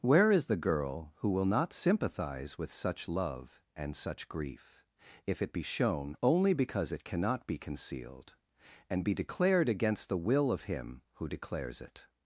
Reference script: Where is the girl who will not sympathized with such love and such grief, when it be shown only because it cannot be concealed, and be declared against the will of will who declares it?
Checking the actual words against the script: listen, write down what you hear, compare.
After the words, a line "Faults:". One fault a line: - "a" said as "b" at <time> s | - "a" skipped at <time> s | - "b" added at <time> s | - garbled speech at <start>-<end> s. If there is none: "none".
Where is the girl who will not sympathize with such love and such grief, if it be shown only because it cannot be concealed, and be declared against the will of him who declares it?
Faults:
- "sympathized" said as "sympathize" at 1.7 s
- "when" said as "if" at 5.3 s
- "will" said as "him" at 10.6 s